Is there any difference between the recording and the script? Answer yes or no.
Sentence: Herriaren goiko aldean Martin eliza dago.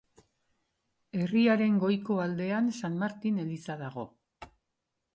yes